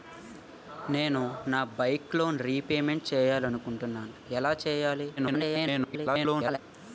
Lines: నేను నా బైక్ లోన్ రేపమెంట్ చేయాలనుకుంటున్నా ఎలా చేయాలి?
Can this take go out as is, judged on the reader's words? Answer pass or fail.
fail